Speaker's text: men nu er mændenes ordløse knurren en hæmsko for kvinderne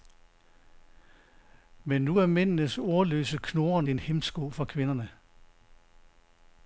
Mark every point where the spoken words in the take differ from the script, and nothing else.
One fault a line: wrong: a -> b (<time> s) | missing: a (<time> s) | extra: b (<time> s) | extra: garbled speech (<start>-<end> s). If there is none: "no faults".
no faults